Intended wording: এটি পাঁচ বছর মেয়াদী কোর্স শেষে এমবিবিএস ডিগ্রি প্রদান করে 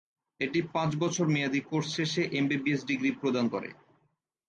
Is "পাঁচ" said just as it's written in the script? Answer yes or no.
yes